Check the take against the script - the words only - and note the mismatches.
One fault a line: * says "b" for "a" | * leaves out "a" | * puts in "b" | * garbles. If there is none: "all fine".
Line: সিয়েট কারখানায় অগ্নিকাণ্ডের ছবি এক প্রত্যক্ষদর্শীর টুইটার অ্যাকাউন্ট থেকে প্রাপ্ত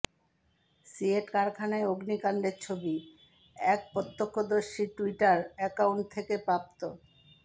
all fine